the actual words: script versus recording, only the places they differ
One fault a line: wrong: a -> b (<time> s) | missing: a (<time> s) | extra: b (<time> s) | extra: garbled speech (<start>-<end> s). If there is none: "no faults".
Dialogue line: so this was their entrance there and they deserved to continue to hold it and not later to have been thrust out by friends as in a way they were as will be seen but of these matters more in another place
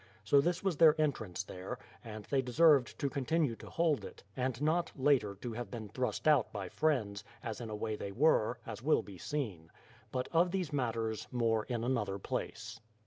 no faults